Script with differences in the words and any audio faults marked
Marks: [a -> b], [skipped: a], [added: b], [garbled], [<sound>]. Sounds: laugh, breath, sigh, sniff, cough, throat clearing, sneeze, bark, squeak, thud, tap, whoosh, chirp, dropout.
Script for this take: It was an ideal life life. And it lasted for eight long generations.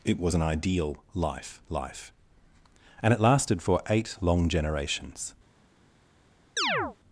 It was an ideal life life. And it lasted for eight long generations. [chirp]